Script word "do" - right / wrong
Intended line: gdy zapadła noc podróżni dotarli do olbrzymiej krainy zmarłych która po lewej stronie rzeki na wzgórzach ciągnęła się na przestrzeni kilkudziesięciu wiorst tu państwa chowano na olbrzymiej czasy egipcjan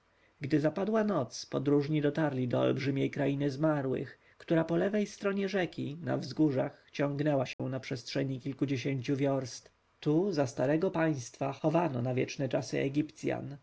right